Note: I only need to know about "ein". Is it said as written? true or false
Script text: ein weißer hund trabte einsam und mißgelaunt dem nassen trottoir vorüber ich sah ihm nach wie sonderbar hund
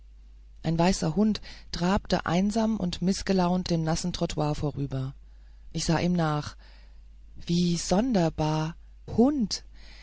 true